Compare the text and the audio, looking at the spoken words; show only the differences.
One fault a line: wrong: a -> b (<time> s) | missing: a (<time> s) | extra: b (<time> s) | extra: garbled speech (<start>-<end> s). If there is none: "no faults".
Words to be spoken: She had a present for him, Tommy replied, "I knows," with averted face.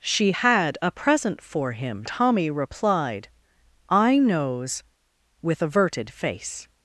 no faults